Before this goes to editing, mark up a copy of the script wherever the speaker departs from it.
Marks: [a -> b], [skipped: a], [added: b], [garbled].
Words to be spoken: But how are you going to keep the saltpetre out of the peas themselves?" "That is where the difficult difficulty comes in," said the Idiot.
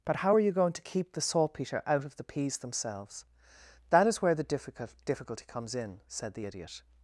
But how are you going to keep the saltpetre out of the peas themselves?" "That is where the difficult difficulty comes in," said the Idiot.